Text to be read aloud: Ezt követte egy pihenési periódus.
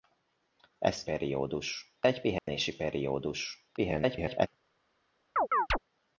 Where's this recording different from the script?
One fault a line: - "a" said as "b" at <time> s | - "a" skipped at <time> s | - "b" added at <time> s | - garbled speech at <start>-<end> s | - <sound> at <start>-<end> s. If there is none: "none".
- "követte" said as "periódus" at 1.0 s
- dropout at 2.4-2.5 s
- garbled speech at 3.8-4.5 s
- chirp at 5.4-5.8 s